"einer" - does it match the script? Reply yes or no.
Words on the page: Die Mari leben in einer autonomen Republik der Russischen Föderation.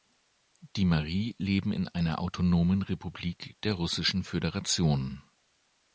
yes